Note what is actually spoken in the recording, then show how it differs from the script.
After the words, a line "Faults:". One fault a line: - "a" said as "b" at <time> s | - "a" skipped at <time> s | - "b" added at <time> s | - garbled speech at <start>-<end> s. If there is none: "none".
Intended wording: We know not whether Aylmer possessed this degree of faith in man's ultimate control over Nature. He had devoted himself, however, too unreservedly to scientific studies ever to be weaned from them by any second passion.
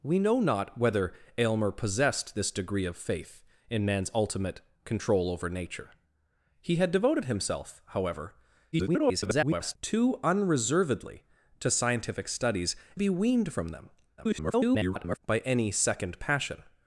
We know not whether Aylmer possessed this degree of faith in man's ultimate control over Nature. He had devoted himself, however, [garbled] too unreservedly to scientific studies be weaned from them [garbled] by any second passion.
Faults:
- garbled speech at 8.7-9.8 s
- "ever to" skipped at 12.7 s
- garbled speech at 14.2-15.2 s